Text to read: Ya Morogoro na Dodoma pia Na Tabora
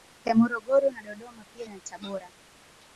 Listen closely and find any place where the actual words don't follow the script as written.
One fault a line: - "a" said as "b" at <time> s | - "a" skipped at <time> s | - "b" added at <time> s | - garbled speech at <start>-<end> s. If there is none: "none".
none